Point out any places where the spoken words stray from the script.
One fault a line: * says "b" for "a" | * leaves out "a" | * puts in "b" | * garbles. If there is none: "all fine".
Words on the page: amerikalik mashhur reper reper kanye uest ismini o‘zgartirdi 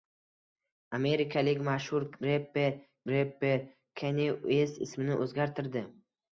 all fine